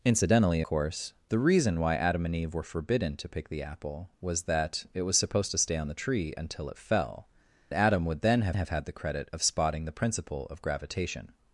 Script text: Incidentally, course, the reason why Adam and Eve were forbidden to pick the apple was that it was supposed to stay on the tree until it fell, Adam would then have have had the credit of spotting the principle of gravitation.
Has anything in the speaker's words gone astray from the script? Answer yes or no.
no